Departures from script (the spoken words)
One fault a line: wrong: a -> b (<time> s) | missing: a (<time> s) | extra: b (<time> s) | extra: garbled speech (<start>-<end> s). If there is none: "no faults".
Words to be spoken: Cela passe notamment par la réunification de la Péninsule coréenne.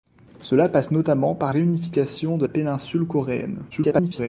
missing: la (1.5 s)
missing: la (2.5 s)
extra: garbled speech (3.7-4.3 s)